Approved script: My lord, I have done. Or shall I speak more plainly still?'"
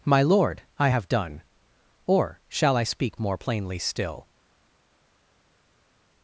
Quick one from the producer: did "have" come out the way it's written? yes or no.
yes